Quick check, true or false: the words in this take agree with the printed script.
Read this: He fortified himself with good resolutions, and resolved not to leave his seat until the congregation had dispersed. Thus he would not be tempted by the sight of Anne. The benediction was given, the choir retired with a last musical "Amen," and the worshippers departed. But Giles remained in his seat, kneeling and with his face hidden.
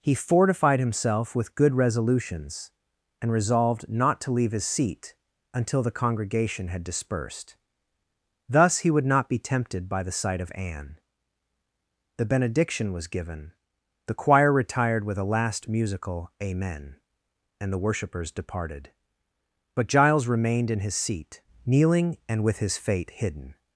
false